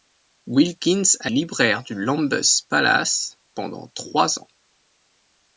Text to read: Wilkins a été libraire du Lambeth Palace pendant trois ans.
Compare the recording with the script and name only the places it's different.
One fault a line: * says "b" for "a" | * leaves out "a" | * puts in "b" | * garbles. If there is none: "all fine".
* leaves out "été"